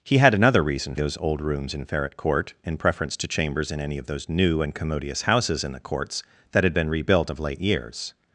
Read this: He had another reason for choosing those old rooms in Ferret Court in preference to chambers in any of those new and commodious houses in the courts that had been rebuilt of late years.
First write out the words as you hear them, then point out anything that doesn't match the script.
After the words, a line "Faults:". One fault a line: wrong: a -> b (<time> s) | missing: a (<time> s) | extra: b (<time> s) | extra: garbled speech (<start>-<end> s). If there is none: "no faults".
He had another reason those old rooms in Ferret Court in preference to chambers in any of those new and commodious houses in the courts that had been rebuilt of late years.
Faults:
missing: for choosing (0.9 s)